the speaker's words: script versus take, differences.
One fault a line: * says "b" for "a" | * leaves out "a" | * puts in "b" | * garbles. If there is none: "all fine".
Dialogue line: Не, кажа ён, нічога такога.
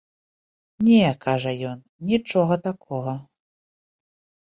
all fine